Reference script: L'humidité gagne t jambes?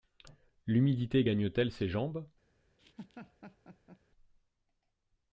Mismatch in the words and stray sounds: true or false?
true